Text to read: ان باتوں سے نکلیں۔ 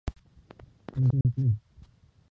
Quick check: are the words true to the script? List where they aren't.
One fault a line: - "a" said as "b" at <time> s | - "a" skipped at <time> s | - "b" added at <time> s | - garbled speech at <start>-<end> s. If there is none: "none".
- "باتوں" skipped at 1.1 s